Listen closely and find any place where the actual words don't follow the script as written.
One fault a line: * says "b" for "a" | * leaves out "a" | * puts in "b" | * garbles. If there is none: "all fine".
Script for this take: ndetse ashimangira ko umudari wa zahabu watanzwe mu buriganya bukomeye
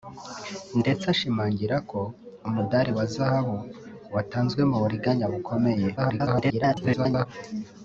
* garbles